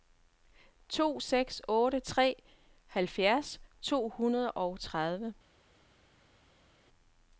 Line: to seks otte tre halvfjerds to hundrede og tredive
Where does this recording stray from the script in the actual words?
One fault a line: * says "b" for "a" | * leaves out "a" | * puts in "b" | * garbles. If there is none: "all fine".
all fine